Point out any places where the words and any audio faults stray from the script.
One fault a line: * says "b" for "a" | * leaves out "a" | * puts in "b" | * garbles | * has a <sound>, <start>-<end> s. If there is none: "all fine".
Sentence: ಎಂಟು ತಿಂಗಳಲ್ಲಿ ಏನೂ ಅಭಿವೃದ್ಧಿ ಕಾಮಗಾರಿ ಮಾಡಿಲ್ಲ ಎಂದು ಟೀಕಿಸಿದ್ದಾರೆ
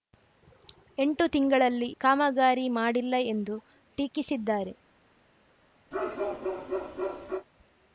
* leaves out "ಏನೂ ಅಭಿವೃದ್ಧಿ"
* has a bark, 5.9-7.5 s